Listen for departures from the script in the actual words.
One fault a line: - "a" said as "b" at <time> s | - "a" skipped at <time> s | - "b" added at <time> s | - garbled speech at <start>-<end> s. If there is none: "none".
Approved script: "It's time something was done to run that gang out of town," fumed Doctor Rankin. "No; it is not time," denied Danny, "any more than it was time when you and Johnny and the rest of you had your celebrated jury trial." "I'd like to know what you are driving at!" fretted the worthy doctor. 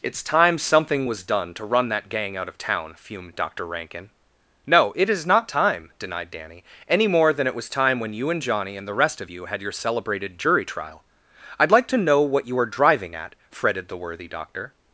none